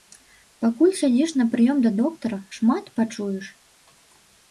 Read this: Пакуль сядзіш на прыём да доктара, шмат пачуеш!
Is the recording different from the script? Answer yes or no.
no